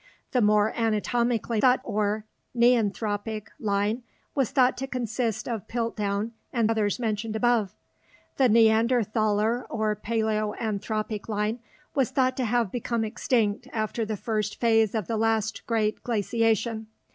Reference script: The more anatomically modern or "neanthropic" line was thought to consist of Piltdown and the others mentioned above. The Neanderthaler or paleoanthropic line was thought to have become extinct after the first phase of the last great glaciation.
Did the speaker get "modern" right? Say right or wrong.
wrong